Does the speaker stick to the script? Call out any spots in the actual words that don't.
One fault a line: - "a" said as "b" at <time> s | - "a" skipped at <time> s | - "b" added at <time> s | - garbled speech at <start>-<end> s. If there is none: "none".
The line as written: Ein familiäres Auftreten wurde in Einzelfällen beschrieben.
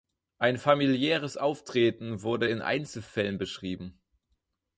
none